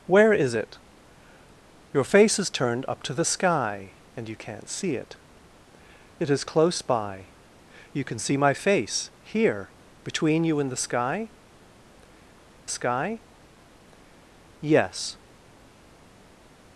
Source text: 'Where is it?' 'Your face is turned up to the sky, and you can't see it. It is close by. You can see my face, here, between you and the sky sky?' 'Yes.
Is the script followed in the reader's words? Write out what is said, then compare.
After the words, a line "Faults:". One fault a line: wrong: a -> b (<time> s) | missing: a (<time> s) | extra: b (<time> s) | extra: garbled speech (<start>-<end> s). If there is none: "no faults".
'Where is it?' 'Your face is turned up to the sky, and you can't see it. It is close by. You can see my face, here, between you and the sky sky?' 'Yes.
Faults:
no faults